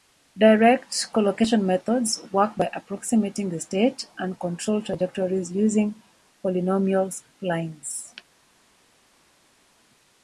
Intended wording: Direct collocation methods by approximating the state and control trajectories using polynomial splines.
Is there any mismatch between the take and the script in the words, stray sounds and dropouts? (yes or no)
yes